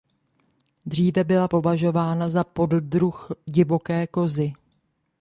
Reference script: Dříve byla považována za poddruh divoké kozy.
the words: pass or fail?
pass